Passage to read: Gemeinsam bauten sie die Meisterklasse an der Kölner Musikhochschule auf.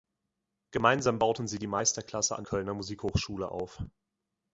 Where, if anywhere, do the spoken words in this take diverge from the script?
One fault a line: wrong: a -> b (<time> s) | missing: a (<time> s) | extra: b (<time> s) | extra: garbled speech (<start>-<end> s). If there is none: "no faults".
missing: der (2.4 s)